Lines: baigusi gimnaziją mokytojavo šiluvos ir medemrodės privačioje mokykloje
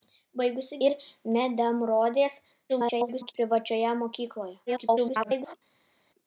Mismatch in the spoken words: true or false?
true